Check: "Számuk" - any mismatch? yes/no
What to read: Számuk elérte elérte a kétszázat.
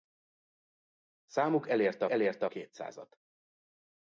no